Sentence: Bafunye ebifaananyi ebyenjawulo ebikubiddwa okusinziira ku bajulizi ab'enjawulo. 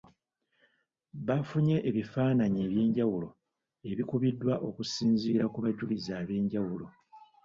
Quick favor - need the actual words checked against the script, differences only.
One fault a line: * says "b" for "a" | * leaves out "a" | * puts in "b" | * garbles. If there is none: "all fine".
all fine